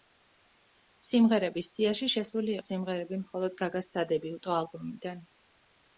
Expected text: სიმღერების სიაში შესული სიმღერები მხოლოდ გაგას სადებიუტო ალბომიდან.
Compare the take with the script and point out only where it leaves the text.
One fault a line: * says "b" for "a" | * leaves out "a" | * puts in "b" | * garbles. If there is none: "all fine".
all fine